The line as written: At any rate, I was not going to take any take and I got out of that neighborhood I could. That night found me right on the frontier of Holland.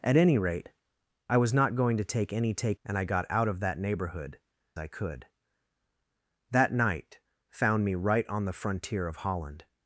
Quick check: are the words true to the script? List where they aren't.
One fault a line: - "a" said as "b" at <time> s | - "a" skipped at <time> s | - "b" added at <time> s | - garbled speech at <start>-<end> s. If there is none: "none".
none